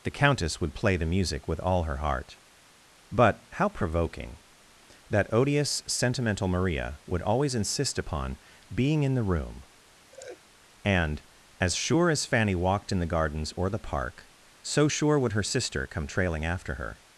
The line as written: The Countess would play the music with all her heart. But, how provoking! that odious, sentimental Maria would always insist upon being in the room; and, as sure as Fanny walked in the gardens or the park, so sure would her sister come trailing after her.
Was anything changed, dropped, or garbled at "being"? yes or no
no